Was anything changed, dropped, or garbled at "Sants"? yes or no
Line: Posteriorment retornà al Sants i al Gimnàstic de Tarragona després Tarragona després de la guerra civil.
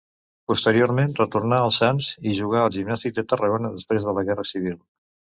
no